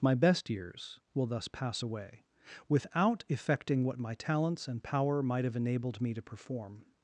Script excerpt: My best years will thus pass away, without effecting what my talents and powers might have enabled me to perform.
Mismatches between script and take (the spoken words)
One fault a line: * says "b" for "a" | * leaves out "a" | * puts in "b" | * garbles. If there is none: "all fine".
* says "power" for "powers"